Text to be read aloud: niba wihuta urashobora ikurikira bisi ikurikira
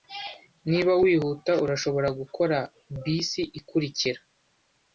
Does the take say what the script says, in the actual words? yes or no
no